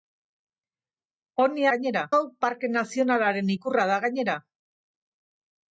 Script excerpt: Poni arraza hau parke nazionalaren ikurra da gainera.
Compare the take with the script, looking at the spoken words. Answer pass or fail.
fail